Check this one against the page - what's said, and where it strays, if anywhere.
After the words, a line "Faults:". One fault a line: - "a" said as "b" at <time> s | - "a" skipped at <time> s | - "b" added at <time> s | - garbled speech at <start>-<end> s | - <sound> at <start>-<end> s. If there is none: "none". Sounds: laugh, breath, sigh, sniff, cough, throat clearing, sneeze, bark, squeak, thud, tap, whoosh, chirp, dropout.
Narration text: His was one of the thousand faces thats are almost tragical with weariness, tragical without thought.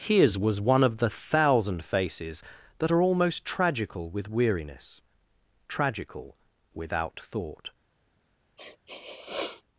His was one of the thousand faces that are almost tragical with weariness, tragical without thought.
Faults:
- "thats" said as "that" at 2.8 s
- sniff at 8.6-9.6 s